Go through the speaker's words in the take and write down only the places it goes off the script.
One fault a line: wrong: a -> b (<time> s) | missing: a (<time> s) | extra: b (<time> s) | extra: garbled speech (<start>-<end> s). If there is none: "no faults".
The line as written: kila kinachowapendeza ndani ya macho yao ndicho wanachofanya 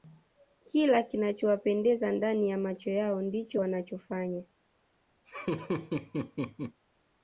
no faults